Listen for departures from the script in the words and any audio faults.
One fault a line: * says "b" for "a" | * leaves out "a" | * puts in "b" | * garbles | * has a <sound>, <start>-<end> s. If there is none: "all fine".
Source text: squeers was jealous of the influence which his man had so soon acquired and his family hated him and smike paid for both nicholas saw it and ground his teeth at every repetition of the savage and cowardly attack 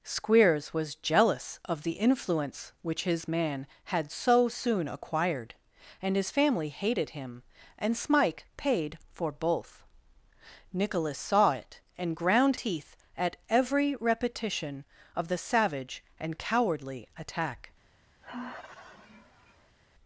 * leaves out "his"
* has a sigh, 18.2-19.8 s